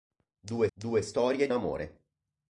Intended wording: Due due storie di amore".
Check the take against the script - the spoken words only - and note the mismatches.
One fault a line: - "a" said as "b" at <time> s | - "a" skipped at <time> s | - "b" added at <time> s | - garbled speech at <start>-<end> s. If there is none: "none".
none